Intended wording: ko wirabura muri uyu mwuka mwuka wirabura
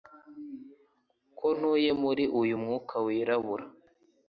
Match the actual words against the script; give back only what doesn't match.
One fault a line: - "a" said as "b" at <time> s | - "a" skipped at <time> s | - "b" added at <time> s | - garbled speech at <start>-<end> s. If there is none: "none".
- "wirabura" said as "ntuye" at 1.6 s
- "mwuka" skipped at 2.9 s